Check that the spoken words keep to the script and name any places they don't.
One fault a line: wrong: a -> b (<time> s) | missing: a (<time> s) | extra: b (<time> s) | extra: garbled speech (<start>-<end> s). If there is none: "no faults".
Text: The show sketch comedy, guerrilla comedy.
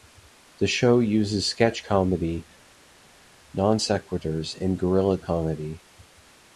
extra: uses (1.0 s)
extra: non sequiturs and (3.5 s)